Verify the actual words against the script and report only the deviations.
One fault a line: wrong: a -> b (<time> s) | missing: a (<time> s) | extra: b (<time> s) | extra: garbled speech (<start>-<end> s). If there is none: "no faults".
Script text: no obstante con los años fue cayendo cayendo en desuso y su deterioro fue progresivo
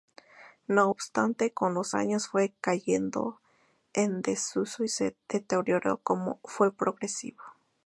missing: cayendo (3.4 s)